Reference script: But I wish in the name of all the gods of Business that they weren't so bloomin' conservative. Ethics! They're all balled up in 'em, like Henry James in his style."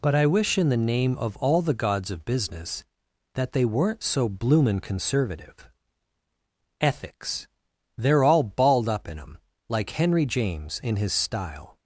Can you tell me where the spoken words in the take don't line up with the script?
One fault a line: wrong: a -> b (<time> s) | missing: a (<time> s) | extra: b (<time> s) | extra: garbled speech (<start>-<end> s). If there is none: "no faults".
no faults